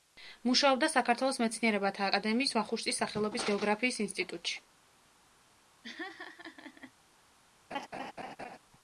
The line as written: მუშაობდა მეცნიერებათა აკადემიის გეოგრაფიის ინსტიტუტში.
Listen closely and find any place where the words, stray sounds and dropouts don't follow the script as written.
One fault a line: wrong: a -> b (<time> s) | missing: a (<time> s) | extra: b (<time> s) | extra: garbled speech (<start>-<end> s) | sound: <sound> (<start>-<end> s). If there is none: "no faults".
extra: საქართველოს (0.9 s)
extra: ვახუშტის სახელობის (2.6 s)
sound: laugh (5.8-6.9 s)
sound: laugh (7.7-8.6 s)